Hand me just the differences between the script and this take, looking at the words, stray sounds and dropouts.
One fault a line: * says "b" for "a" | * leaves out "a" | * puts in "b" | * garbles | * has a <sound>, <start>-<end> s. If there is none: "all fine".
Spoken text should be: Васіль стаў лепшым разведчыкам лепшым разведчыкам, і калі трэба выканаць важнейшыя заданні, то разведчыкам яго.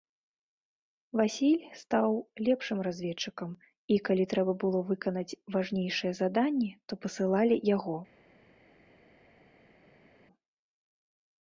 * leaves out "лепшым разведчыкам"
* puts in "было"
* says "пасылалі" for "разведчыкам"